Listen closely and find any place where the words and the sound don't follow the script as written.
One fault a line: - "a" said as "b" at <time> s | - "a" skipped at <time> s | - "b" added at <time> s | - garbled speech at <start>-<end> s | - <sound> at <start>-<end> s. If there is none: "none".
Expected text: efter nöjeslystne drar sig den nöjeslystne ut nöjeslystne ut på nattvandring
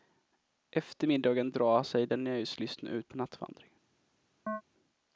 - "nöjeslystne" said as "middagen" at 1.0 s
- "nöjeslystne ut" skipped at 3.1 s
- chirp at 4.5-4.6 s